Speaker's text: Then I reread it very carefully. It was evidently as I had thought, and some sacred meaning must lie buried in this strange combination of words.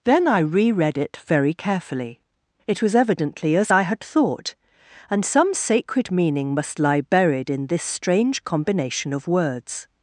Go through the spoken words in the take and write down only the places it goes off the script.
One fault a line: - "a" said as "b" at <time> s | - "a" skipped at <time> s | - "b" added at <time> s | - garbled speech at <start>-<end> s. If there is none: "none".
none